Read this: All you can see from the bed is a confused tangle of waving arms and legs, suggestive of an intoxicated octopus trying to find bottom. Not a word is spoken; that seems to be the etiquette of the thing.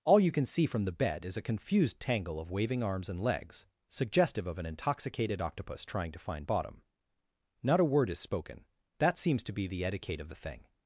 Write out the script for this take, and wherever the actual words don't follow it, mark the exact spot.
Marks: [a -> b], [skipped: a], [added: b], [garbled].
All you can see from the bed is a confused tangle of waving arms and legs, suggestive of an intoxicated octopus trying to find bottom. Not a word is spoken; that seems to be the etiquette of the thing.